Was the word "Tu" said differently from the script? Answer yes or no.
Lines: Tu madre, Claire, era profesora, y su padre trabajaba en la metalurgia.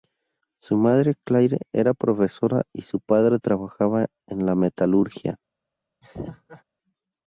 yes